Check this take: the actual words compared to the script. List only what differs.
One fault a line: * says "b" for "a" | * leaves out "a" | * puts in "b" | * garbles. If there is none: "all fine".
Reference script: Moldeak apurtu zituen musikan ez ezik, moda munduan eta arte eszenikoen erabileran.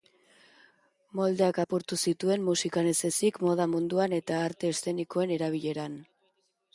all fine